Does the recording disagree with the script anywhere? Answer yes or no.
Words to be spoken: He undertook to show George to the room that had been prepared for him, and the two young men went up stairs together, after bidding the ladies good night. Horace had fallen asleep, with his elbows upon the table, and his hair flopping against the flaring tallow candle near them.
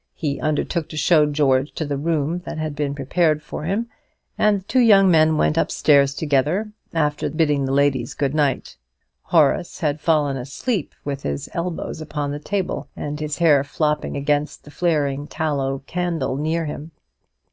yes